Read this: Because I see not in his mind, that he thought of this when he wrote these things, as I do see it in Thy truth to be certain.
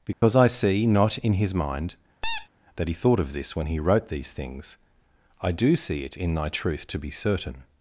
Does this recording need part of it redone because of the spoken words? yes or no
yes